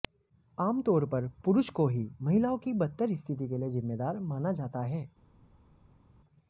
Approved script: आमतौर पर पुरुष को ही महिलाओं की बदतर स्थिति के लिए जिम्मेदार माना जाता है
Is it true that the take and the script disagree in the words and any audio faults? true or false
false